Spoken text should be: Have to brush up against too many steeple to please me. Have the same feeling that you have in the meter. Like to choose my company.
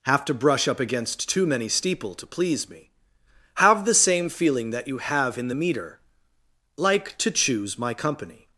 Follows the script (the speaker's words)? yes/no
yes